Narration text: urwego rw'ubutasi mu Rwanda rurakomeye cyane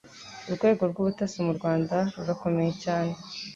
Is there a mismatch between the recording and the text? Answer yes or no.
no